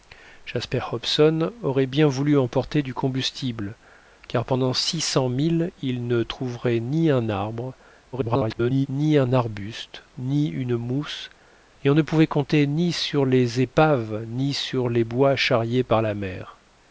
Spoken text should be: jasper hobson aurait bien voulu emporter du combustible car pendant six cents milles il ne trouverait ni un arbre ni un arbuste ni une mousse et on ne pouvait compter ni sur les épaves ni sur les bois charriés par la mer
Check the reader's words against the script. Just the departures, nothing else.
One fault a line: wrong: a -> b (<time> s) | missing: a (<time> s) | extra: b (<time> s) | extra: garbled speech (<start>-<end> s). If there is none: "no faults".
extra: garbled speech (8.1-8.9 s)